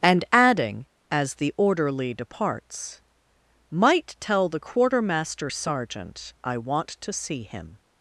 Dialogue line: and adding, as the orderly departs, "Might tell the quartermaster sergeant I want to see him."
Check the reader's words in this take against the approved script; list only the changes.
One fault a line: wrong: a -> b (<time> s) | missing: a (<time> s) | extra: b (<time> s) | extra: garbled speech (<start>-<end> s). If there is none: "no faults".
no faults